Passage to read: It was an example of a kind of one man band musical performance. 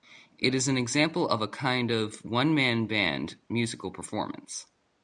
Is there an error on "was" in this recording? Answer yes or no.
yes